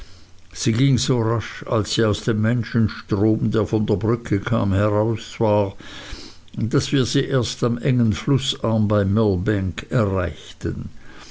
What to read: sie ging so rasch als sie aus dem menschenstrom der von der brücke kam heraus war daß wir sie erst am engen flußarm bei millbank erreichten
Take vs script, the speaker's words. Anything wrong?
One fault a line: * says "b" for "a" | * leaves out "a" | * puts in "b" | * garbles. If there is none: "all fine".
all fine